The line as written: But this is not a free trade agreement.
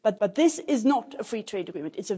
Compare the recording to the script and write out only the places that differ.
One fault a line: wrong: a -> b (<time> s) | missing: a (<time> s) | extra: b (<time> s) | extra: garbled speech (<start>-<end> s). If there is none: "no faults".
extra: but (0.2 s)